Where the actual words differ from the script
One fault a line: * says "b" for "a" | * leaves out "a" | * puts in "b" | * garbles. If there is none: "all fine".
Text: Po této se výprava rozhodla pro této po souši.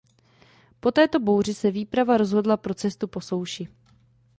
* puts in "bouři"
* says "cestu" for "této"